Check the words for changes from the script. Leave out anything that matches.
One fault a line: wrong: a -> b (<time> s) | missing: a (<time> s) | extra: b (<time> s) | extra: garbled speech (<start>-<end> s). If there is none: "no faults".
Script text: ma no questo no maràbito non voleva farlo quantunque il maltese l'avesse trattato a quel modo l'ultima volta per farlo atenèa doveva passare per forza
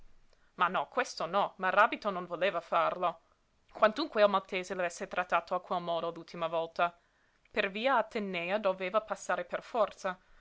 wrong: farlo -> via (7.7 s)